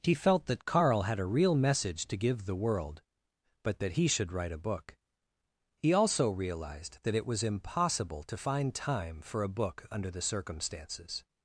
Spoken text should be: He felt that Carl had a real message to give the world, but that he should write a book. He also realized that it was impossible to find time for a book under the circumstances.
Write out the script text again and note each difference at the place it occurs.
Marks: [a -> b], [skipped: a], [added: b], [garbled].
He felt that Carl had a real message to give the world, but that he should write a book. He also realized that it was impossible to find time for a book under the circumstances.